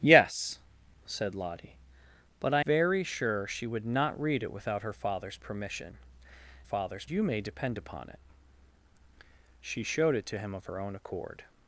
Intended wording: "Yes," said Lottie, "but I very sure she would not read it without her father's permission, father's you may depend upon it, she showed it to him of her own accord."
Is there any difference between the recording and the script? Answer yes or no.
no